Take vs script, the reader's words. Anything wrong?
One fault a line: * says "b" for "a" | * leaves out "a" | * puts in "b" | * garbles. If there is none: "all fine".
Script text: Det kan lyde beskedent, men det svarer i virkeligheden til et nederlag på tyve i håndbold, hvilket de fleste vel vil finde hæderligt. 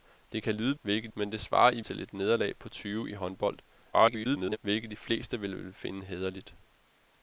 * says "hvilket" for "beskedent"
* leaves out "virkeligheden"
* garbles